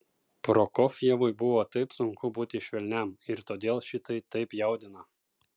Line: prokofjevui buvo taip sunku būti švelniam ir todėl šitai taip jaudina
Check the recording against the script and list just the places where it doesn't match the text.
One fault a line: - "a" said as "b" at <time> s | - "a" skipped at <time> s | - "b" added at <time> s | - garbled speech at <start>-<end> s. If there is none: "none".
none